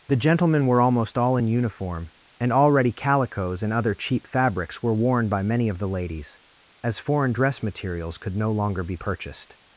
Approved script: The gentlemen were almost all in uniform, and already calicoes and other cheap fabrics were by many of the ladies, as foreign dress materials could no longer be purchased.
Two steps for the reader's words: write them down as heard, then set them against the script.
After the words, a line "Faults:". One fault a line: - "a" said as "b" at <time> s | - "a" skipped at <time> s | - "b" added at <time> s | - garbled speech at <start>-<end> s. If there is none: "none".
The gentlemen were almost all in uniform, and already calicoes and other cheap fabrics were worn by many of the ladies, as foreign dress materials could no longer be purchased.
Faults:
- "worn" added at 4.9 s